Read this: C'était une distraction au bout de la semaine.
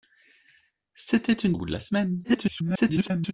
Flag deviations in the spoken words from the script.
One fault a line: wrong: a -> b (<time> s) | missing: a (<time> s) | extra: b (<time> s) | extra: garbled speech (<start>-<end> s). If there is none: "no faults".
missing: distraction (1.5 s)
extra: garbled speech (2.2-3.3 s)